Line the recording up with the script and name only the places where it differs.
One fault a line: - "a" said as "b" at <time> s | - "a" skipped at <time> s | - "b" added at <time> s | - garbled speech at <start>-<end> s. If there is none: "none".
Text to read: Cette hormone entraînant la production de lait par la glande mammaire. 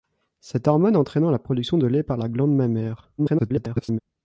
- garbled speech at 3.2-4.0 s